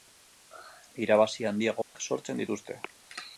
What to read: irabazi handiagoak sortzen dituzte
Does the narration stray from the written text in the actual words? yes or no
no